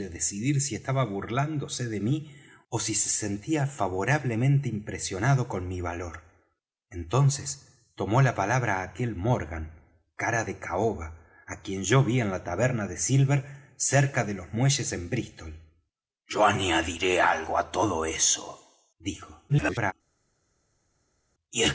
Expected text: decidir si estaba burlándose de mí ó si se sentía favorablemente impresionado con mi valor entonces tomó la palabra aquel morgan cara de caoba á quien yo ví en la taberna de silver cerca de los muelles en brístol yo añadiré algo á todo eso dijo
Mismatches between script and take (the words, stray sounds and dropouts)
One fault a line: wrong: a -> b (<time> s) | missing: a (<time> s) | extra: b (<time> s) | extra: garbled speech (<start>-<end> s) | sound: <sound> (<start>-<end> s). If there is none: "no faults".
extra: garbled speech (19.5-19.9 s)